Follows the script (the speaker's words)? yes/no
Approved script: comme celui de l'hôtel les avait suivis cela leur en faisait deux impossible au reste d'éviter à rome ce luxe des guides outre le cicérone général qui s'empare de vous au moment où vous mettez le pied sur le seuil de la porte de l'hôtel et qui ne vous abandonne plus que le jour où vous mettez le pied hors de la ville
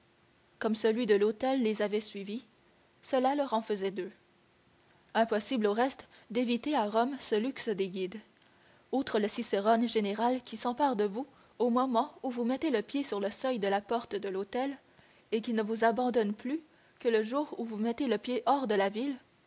yes